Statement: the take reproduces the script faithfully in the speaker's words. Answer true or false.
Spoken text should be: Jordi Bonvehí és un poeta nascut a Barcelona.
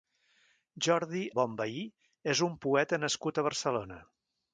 true